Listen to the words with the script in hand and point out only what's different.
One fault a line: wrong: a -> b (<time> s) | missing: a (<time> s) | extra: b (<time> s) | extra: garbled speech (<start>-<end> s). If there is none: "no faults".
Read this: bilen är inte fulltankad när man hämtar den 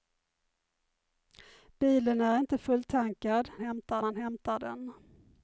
wrong: när -> hämtar (3.6 s)